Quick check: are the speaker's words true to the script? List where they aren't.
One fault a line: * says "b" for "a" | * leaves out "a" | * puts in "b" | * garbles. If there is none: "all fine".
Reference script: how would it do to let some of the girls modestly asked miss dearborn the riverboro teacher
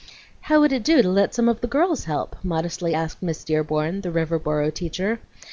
* puts in "help"